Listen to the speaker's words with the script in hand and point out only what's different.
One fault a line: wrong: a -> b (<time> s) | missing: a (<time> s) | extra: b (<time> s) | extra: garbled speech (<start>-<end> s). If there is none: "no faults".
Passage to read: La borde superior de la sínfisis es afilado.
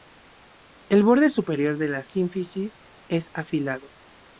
wrong: La -> El (0.9 s)